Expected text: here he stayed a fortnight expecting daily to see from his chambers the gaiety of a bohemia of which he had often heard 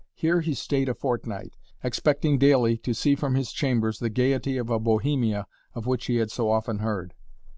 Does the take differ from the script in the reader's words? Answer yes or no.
yes